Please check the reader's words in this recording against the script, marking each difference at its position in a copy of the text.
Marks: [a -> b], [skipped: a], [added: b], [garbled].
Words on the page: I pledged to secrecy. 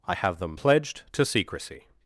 I [added: have them] pledged to secrecy.